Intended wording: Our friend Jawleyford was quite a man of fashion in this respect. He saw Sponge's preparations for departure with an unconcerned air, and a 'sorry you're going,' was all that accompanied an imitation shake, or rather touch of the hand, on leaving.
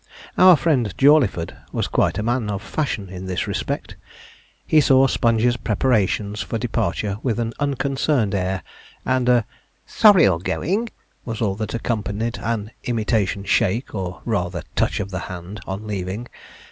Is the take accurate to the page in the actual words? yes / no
yes